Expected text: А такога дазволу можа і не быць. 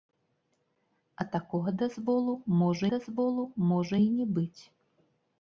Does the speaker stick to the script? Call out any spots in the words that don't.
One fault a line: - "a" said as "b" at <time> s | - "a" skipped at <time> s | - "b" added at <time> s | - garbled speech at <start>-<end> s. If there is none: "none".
- "дазволу можа" added at 2.9 s